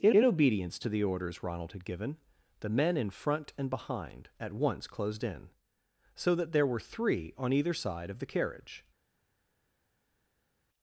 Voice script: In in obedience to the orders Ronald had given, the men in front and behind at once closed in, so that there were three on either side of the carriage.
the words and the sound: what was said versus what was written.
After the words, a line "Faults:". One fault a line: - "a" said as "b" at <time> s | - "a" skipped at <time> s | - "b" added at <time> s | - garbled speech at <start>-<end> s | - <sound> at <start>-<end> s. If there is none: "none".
In in obedience to the orders Ronald had given, the men in front and behind at once closed in, so that there were three on either side of the carriage.
Faults:
none